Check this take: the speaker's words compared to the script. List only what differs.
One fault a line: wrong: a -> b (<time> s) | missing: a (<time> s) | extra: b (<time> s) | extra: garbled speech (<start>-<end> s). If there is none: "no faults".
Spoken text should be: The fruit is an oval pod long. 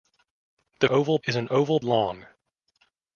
wrong: fruit -> oval (0.9 s)
missing: pod (1.8 s)